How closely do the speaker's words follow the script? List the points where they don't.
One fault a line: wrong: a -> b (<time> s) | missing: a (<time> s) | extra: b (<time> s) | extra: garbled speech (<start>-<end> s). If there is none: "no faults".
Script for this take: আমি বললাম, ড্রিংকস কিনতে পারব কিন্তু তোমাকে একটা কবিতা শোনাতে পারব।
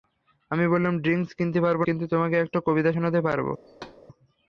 no faults